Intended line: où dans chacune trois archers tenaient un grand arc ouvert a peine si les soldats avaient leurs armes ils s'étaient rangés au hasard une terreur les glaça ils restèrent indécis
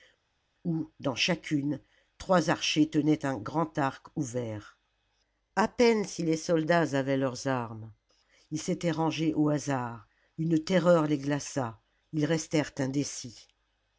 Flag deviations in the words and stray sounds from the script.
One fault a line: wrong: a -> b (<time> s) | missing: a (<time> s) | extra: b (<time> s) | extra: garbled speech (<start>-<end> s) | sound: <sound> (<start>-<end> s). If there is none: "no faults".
no faults